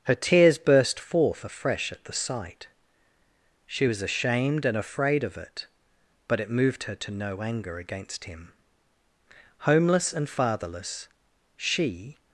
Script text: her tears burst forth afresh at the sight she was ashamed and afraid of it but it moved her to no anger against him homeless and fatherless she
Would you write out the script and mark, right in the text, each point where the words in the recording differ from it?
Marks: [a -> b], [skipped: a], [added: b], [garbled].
her tears burst forth afresh at the sight she was ashamed and afraid of it but it moved her to no anger against him homeless and fatherless she